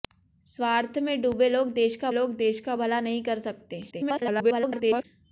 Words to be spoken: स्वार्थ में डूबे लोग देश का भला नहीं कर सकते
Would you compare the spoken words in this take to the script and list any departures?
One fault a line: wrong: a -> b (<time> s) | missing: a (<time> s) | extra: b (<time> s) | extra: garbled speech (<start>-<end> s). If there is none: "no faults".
extra: लोग देश का (2.1 s)
extra: garbled speech (3.9-5.0 s)